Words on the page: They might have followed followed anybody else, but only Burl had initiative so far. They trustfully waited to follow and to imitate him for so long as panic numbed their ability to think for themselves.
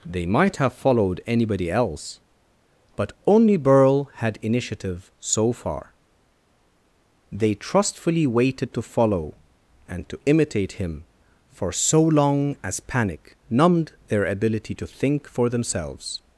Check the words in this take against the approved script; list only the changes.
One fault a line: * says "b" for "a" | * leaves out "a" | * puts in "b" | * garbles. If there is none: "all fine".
* leaves out "followed"